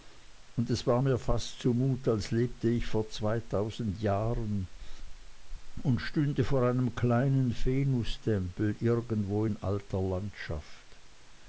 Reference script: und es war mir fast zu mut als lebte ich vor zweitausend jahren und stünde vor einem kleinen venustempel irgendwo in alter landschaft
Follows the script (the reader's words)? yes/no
yes